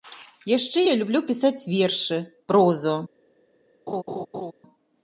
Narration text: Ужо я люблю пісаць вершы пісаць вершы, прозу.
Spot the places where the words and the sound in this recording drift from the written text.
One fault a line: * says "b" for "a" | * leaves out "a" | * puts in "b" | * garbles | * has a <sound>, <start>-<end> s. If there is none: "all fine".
* says "Яшчэ" for "Ужо"
* leaves out "пісаць вершы"
* has a laugh, 3.9-4.5 s